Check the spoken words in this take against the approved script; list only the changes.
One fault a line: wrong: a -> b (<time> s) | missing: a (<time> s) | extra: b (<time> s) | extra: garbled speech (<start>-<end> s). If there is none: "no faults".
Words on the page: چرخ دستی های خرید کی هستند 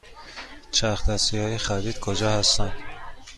wrong: کی -> کجا (2.0 s)